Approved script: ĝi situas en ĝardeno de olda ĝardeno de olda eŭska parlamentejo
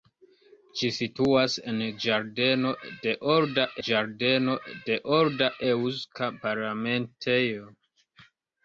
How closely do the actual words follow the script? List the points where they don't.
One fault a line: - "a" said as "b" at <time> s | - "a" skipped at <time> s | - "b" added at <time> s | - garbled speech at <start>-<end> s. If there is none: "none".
none